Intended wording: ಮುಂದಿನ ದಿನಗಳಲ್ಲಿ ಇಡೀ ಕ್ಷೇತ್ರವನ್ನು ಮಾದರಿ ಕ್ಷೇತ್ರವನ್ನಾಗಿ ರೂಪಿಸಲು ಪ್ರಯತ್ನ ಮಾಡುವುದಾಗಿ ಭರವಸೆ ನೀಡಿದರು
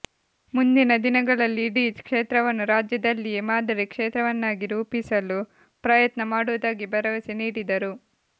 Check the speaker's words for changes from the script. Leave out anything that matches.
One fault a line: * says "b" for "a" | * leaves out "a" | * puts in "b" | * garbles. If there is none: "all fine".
* puts in "ರಾಜ್ಯದಲ್ಲಿಯೇ"